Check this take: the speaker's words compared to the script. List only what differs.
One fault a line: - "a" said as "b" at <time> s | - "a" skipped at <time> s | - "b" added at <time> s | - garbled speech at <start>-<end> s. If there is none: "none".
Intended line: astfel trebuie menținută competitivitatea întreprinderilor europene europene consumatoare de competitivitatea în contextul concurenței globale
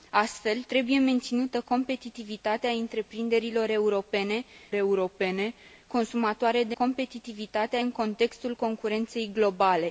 none